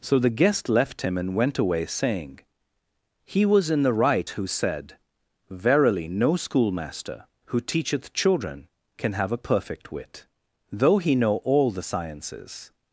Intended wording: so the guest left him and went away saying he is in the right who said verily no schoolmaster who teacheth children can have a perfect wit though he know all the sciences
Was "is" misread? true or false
true